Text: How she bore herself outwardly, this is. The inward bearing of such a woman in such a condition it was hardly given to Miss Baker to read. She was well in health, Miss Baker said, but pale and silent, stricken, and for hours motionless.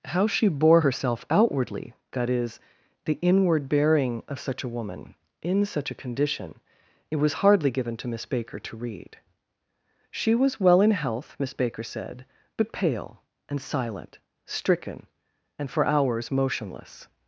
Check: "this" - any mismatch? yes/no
yes